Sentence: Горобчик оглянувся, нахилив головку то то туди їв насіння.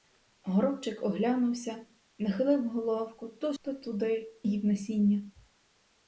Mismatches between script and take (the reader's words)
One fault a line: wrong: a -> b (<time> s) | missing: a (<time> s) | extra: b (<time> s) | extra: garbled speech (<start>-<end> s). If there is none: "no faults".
no faults